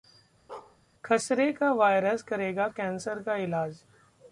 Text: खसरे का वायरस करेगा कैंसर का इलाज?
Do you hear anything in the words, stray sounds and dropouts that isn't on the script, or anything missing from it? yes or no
yes